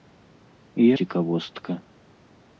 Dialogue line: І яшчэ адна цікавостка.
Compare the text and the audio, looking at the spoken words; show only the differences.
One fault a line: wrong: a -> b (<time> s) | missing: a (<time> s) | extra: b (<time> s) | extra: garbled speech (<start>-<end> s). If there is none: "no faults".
missing: яшчэ адна (0.9 s)